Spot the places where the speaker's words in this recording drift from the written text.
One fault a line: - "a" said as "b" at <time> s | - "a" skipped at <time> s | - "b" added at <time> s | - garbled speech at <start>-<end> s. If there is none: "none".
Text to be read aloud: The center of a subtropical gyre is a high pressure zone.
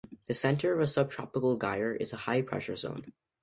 none